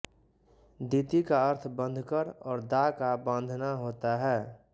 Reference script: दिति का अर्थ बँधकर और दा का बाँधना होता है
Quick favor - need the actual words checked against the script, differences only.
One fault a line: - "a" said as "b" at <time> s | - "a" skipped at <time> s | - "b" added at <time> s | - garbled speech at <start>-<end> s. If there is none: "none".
none